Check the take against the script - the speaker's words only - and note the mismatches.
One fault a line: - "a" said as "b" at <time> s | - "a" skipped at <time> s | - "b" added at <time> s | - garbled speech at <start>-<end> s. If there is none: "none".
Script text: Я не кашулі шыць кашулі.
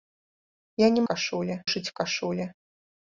none